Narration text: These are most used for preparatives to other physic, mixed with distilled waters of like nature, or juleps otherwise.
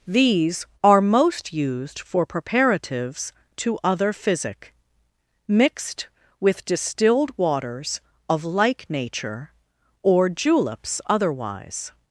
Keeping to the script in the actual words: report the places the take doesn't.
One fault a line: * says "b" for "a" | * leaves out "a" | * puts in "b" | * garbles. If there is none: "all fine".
all fine